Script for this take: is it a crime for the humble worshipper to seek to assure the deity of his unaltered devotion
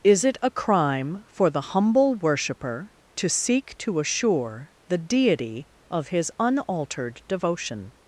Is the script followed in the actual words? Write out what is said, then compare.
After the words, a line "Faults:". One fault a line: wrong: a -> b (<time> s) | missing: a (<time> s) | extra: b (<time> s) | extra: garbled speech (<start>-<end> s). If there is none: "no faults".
is it a crime for the humble worshipper to seek to assure the deity of his unaltered devotion
Faults:
no faults